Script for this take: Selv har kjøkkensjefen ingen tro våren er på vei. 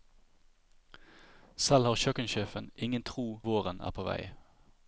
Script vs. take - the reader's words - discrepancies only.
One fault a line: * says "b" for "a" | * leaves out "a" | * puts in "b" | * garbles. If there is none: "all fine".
all fine